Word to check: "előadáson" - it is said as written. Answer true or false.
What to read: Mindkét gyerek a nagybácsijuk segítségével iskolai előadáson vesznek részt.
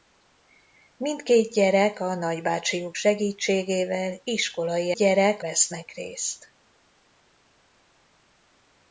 false